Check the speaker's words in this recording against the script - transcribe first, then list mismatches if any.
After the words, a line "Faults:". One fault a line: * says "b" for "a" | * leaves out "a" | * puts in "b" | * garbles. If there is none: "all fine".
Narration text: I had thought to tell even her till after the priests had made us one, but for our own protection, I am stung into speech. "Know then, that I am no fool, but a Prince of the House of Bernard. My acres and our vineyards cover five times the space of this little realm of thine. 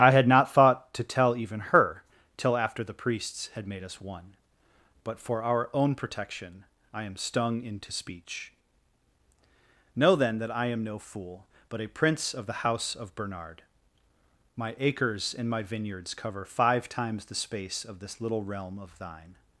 I had not thought to tell even her till after the priests had made us one, but for our own protection, I am stung into speech. "Know then, that I am no fool, but a Prince of the House of Bernard. My acres and my vineyards cover five times the space of this little realm of thine.
Faults:
* puts in "not"
* says "my" for "our"